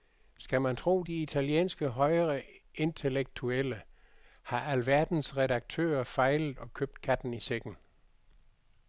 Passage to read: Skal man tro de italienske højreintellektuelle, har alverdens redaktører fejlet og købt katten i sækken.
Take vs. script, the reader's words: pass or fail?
pass